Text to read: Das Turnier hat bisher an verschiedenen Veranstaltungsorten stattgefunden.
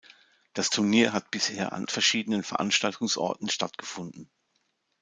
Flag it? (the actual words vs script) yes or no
no